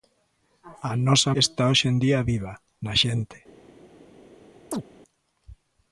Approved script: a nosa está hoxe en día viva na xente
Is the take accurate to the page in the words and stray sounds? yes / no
no